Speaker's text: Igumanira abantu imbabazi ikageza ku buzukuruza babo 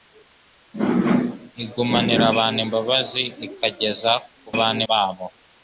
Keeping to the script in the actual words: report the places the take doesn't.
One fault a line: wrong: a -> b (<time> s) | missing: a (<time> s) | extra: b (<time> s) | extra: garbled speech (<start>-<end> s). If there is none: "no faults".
wrong: buzukuruza -> abantu (4.6 s)